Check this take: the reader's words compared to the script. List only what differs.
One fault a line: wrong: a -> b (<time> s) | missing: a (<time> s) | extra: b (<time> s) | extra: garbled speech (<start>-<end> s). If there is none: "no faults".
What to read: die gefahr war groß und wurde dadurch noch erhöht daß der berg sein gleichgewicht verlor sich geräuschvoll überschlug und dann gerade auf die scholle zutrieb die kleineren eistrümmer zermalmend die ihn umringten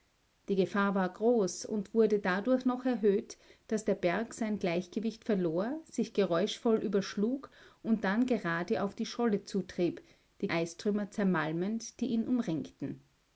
missing: kleineren (10.5 s)